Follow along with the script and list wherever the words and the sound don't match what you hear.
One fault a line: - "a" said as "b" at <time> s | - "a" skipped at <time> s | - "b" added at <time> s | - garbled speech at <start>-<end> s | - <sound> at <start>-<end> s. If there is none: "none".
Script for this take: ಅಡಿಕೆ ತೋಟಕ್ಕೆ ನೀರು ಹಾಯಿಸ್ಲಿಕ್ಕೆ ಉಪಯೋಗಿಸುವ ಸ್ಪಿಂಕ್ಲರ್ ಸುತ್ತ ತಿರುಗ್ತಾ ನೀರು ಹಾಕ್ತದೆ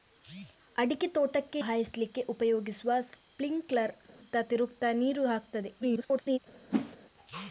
- "ನೀರು" skipped at 1.6 s
- dropout at 4.1-4.2 s
- garbled speech at 5.8-6.4 s
- whoosh at 6.7-7.0 s